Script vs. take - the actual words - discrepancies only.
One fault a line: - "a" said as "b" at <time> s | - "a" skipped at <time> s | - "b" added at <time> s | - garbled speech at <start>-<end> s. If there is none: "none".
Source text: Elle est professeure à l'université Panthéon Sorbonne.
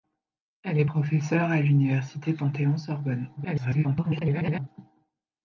- garbled speech at 3.4-4.7 s